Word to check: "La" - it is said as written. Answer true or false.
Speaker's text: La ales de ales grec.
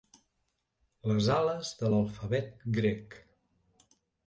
false